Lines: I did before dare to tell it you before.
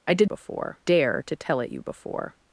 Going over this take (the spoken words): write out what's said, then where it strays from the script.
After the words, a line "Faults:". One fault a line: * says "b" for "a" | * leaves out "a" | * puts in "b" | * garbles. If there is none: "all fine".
I did before dare to tell it you before.
Faults:
all fine